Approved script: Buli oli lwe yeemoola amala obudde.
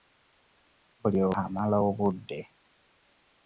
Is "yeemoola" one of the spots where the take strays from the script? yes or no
yes